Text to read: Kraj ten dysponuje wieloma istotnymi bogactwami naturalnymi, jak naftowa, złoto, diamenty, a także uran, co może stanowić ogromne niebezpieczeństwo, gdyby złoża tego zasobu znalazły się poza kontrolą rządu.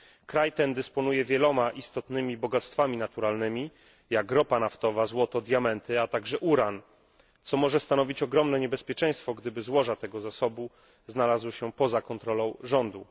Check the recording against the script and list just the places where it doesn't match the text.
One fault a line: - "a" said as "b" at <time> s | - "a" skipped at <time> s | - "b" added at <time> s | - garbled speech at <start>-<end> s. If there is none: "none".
- "ropa" added at 4.3 s